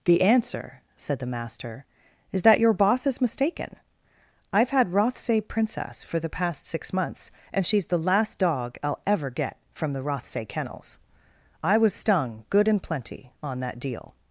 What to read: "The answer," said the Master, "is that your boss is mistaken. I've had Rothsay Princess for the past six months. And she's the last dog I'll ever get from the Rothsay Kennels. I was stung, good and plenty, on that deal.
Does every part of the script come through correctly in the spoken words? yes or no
yes